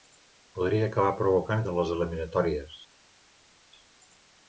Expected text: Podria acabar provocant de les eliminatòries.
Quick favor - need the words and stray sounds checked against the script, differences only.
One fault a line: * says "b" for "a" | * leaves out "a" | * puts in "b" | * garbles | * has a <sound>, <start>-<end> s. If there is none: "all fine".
all fine